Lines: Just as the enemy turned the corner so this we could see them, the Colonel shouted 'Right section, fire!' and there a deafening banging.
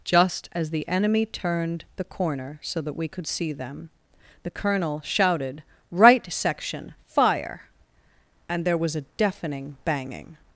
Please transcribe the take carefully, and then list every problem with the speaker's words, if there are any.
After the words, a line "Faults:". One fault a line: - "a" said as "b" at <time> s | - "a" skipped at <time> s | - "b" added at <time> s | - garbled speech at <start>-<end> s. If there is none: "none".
Just as the enemy turned the corner so that we could see them, the Colonel shouted 'Right section, fire!' and there was a deafening banging.
Faults:
- "this" said as "that" at 2.8 s
- "was" added at 8.8 s